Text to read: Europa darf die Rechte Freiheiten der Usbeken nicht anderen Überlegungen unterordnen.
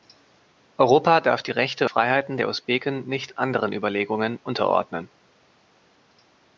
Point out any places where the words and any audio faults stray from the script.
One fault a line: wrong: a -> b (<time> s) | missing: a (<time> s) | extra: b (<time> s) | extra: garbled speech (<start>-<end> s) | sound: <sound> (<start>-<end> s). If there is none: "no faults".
no faults